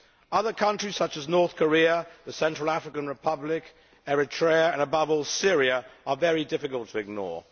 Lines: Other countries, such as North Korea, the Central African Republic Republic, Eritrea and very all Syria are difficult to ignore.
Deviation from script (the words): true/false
true